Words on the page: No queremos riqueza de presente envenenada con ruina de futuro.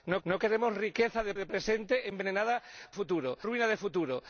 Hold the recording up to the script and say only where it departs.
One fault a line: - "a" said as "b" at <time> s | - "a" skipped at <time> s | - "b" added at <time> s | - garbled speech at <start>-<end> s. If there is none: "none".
- "no" added at 0.2 s
- "de" added at 1.3 s
- "con" said as "futuro" at 2.9 s